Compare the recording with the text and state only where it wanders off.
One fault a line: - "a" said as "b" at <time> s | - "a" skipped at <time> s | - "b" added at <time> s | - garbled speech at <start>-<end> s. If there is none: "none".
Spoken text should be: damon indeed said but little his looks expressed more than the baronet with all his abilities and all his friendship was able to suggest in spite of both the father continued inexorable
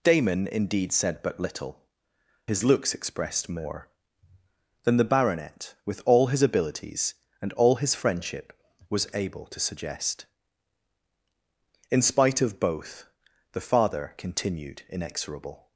none